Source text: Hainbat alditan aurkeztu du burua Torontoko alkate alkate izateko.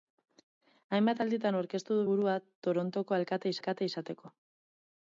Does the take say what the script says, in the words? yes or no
yes